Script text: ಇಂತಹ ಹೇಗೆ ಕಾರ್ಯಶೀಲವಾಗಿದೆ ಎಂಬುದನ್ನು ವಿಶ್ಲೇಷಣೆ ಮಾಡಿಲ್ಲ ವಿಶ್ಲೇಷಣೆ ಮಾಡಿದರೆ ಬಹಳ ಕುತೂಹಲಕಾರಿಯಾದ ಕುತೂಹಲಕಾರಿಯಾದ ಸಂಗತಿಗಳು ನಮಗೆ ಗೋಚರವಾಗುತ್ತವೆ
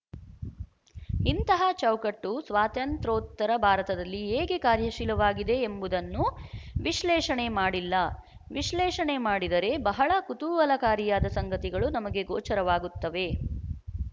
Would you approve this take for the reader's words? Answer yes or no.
no